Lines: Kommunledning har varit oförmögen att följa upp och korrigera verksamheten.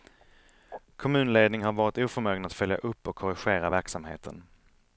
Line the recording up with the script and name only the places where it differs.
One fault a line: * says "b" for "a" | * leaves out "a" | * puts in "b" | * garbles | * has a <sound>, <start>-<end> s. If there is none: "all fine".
all fine